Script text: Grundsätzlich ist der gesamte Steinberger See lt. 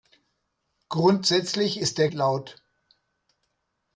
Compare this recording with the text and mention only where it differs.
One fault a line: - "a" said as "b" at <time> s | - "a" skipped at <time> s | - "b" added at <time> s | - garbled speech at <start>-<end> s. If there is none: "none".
- "gesamte Steinberger See" skipped at 2.1 s